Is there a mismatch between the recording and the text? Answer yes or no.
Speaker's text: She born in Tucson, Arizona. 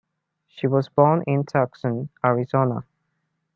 yes